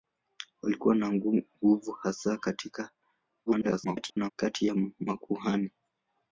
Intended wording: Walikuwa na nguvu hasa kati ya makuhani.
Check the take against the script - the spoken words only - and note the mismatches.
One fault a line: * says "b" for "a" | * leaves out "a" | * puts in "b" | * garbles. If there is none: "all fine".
* garbles